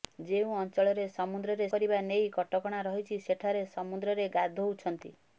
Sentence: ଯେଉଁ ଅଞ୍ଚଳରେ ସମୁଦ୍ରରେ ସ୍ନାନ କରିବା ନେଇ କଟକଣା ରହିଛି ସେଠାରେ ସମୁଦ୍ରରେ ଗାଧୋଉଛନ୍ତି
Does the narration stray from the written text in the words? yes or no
yes